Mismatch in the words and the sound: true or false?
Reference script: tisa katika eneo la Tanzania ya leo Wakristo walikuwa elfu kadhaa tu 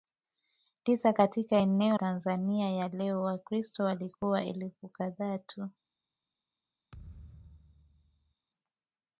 true